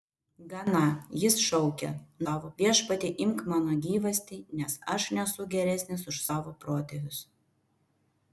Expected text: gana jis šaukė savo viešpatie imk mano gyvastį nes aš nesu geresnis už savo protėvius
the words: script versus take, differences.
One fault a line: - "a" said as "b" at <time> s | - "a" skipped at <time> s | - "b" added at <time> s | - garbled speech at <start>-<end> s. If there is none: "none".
none